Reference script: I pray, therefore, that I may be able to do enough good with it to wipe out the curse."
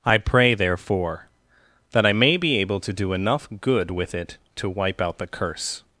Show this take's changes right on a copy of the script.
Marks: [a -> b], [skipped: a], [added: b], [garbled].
I pray, therefore, that I may be able to do enough good with it to wipe out the curse."